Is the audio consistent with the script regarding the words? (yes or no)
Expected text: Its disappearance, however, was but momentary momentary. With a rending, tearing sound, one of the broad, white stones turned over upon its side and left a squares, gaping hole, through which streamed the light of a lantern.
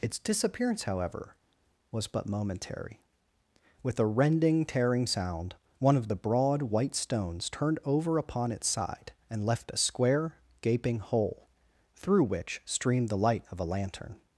no